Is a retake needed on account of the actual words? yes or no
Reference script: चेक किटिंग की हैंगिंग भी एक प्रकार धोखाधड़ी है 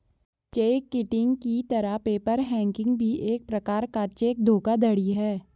yes